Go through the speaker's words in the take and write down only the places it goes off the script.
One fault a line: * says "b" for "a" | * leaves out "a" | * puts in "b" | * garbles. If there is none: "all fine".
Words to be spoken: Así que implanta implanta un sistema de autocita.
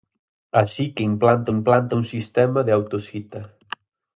all fine